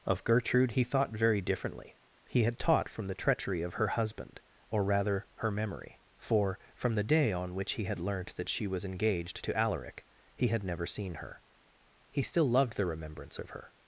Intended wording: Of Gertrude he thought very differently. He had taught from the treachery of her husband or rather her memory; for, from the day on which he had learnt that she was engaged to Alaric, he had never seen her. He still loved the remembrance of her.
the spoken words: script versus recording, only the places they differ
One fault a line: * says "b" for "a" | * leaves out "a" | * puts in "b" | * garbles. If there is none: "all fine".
all fine